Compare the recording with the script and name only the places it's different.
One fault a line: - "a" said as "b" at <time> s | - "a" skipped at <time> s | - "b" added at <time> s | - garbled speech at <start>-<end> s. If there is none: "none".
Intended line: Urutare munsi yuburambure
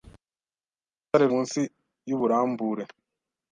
none